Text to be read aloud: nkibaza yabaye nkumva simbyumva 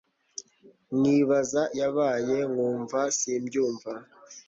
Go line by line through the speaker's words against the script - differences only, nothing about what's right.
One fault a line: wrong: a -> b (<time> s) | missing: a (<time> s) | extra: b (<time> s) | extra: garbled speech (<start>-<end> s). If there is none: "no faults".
no faults